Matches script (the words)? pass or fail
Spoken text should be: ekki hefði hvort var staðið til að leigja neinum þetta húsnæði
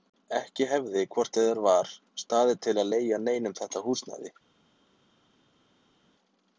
fail